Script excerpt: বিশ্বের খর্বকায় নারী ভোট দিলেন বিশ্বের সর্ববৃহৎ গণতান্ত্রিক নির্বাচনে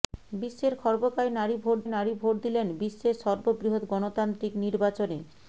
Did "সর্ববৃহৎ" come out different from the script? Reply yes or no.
no